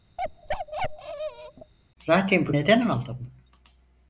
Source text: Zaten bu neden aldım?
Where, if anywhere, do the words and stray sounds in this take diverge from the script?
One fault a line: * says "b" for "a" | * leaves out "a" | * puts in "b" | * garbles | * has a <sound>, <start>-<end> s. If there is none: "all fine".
* has a bark, 0.2-1.7 s